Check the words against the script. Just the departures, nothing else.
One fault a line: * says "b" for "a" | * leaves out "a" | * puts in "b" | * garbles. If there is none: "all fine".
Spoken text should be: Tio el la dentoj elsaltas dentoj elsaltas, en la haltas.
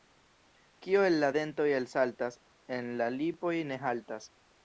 * says "Kio" for "Tio"
* says "en la lipoj ne" for "dentoj elsaltas en la"